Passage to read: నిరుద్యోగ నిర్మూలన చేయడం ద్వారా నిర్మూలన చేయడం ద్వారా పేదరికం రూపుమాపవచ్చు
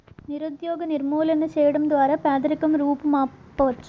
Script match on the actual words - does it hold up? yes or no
no